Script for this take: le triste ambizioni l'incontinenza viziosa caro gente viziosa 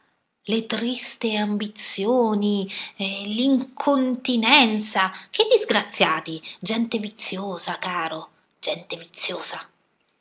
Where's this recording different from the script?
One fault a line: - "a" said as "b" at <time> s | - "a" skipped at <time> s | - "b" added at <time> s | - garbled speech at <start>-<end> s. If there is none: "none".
- "che disgraziati gente" added at 5.3 s